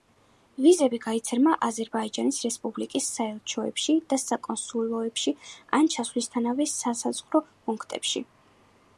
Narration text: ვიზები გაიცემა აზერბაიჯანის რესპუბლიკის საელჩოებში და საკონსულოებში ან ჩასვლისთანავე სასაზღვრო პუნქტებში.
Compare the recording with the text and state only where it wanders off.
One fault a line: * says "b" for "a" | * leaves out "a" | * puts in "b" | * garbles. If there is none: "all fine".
all fine